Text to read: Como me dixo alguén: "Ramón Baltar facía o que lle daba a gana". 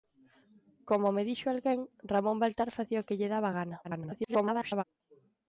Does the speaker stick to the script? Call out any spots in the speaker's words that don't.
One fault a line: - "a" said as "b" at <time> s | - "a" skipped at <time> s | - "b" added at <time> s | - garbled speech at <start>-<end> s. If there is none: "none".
- garbled speech at 3.8-4.8 s